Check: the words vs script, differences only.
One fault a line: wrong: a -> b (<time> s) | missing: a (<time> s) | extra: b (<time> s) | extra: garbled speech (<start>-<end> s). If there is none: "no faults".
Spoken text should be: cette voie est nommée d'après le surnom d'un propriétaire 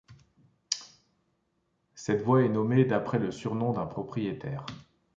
no faults